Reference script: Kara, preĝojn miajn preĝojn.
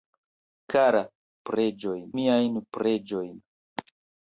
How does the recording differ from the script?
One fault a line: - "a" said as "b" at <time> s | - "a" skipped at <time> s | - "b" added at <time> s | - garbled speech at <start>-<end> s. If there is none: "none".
none